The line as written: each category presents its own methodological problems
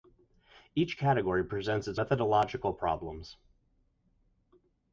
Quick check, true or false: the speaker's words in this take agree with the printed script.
false